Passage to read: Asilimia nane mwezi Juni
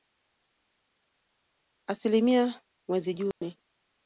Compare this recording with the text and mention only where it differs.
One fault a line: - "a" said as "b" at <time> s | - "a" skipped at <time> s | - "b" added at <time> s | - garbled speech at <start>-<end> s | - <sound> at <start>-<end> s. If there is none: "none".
- "nane" skipped at 2.6 s
- dropout at 3.3-3.4 s